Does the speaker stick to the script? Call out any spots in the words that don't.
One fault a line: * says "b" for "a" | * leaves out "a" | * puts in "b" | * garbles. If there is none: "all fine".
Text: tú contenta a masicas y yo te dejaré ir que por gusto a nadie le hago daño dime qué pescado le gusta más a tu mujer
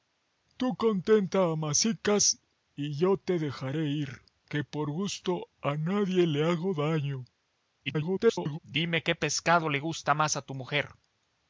* garbles